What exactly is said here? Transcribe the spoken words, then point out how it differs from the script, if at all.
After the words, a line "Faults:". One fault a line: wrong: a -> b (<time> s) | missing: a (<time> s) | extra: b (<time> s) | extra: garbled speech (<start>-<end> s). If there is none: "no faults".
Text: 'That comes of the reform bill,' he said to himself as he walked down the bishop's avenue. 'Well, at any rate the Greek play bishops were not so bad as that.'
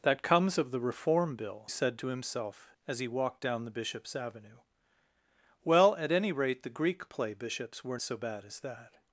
'That comes of the reform bill,' said to himself as he walked down the bishop's avenue. 'Well, at any rate the Greek play bishops were so bad as that.'
Faults:
missing: he (1.7 s)
missing: not (8.0 s)